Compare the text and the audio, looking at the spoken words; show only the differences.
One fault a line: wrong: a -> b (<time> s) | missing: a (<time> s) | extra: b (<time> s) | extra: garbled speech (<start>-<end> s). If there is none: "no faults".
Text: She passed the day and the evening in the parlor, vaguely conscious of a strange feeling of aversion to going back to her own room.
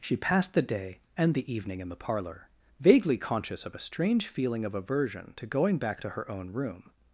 no faults